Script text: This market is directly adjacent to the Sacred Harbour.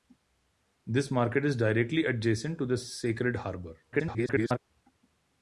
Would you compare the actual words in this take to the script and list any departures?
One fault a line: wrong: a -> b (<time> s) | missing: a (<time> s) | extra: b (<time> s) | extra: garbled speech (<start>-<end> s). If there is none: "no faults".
extra: garbled speech (3.9-4.6 s)